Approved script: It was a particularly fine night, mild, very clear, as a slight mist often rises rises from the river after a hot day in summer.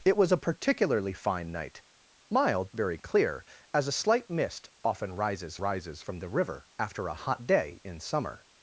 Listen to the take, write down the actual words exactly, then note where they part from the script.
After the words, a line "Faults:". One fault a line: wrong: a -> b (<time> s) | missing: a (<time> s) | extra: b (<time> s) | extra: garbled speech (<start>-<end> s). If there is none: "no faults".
It was a particularly fine night, mild, very clear, as a slight mist often rises rises from the river after a hot day in summer.
Faults:
no faults